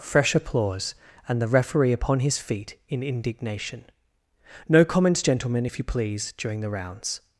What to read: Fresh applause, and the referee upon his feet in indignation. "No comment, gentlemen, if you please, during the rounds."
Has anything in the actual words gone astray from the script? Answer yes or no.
yes